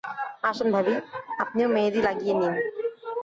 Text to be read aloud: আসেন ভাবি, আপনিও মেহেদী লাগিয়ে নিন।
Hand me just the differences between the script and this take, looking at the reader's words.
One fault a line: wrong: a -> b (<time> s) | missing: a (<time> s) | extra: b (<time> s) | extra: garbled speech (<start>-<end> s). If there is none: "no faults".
no faults